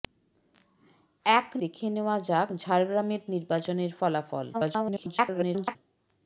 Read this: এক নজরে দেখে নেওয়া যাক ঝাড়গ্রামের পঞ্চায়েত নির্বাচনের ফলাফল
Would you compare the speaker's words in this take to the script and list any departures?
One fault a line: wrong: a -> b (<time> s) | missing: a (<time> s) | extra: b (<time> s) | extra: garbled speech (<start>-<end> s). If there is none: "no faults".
missing: নজরে (1.5 s)
missing: পঞ্চায়েত (3.2 s)
extra: garbled speech (4.5-5.8 s)